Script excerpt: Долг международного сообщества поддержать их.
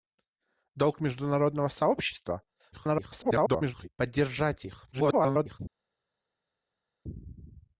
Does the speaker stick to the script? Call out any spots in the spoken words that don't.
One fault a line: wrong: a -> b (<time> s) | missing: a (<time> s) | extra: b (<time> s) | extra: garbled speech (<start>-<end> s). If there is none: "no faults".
extra: garbled speech (2.7-3.9 s)
extra: garbled speech (4.9-5.6 s)